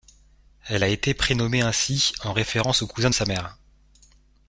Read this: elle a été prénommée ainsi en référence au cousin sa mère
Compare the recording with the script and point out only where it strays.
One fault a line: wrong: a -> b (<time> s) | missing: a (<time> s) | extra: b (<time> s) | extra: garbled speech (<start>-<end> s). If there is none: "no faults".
no faults